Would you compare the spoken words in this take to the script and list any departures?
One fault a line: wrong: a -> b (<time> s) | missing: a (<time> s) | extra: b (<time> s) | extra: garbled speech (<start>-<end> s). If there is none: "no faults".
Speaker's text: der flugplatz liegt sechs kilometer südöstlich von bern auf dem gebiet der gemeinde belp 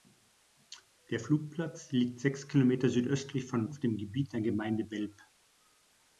missing: bern (3.7 s)